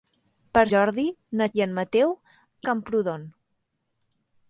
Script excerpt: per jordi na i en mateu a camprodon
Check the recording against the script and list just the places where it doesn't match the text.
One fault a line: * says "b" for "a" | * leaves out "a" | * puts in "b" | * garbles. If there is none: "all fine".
all fine